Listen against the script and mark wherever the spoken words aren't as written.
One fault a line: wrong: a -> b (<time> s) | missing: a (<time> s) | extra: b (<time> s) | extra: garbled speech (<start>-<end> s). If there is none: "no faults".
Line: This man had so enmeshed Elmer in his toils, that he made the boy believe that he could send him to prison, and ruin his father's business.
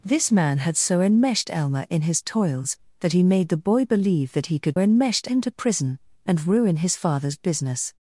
wrong: send -> enmeshed (4.8 s)